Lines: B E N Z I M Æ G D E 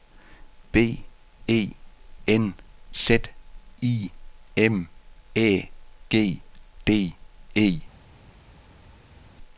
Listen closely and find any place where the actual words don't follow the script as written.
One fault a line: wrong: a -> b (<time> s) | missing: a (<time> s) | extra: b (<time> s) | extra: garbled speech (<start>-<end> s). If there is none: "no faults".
no faults